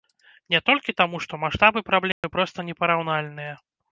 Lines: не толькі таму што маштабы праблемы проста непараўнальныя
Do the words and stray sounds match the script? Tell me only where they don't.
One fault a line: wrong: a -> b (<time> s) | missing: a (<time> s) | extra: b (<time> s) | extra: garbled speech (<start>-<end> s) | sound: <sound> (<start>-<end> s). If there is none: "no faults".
sound: dropout (2.1-2.2 s)